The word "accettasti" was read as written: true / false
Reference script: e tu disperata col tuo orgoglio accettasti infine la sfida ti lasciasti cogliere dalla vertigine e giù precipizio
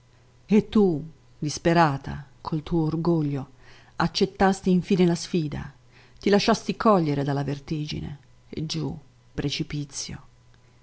true